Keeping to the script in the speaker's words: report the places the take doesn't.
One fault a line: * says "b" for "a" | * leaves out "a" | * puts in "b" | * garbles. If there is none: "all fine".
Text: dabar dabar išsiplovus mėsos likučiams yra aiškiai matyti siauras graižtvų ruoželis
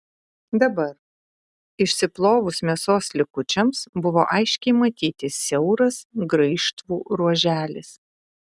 * leaves out "dabar"
* says "buvo" for "yra"